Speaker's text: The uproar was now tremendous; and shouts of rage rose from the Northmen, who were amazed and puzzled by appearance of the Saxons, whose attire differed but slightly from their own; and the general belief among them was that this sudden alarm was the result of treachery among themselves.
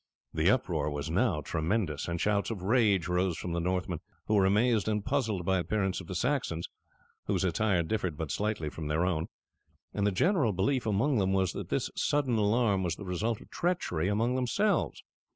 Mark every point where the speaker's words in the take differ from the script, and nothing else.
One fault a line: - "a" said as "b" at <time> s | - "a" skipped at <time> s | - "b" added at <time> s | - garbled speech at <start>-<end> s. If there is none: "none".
none